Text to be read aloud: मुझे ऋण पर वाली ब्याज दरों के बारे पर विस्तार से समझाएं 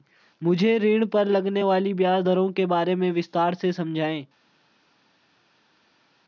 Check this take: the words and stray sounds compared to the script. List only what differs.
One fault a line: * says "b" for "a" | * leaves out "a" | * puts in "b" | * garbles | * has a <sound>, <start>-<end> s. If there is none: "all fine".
* puts in "लगने"
* says "में" for "पर"